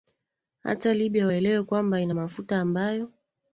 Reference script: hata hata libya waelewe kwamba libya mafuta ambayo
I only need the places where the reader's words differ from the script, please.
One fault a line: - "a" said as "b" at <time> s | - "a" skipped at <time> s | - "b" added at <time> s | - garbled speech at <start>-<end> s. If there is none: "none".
- "hata" skipped at 0.9 s
- "libya" said as "ina" at 2.0 s